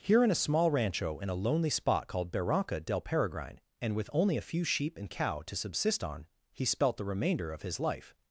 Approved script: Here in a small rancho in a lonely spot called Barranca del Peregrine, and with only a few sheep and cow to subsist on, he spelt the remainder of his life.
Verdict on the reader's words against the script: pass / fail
pass